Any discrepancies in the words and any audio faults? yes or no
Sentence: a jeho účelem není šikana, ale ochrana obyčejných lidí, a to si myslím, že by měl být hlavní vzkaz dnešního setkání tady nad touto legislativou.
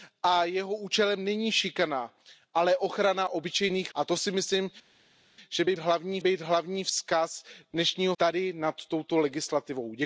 yes